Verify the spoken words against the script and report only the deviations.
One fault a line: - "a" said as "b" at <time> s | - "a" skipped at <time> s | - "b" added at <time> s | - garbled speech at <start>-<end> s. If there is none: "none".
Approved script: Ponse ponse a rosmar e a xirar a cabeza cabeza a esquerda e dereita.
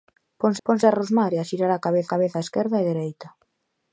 none